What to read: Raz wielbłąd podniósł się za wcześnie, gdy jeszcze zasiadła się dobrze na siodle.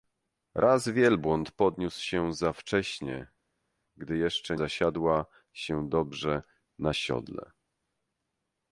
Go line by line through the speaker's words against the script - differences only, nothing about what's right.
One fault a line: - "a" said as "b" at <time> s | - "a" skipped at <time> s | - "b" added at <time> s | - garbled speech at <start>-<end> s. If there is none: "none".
none